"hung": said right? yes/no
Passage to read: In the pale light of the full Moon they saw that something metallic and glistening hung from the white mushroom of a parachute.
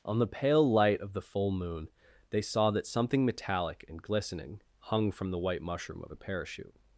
yes